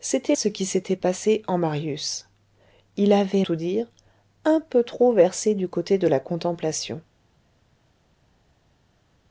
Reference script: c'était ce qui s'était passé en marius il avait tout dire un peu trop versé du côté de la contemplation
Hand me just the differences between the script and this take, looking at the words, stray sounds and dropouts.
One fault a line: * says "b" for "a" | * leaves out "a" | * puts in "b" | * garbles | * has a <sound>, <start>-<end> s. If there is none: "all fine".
all fine